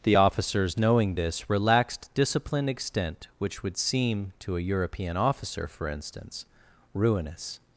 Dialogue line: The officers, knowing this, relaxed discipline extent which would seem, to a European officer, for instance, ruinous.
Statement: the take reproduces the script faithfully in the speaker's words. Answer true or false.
true